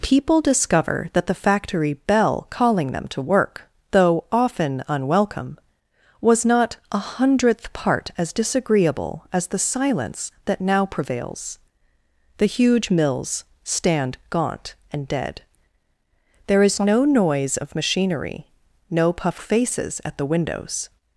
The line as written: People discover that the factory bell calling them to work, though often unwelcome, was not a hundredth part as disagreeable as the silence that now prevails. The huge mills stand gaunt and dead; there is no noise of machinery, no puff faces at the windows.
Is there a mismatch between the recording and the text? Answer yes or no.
no